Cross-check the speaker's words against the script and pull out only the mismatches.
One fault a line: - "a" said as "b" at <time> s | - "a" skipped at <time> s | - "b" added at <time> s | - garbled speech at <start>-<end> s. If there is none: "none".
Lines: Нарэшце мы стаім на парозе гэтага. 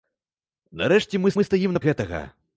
- "мы" added at 1.3 s
- "парозе" skipped at 1.8 s